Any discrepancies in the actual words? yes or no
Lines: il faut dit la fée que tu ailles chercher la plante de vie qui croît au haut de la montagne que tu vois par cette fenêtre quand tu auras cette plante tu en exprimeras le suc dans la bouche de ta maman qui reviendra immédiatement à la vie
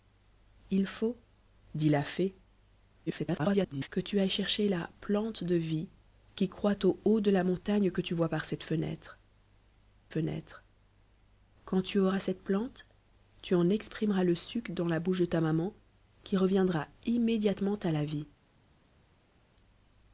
yes